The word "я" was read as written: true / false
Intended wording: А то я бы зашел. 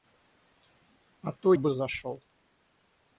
false